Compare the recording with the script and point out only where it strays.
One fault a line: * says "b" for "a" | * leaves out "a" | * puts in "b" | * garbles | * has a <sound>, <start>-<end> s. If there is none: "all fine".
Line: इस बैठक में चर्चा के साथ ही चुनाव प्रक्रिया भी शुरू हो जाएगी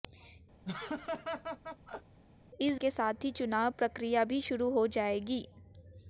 * has a laugh, 0.6-2.2 s
* leaves out "बैठक में चर्चा"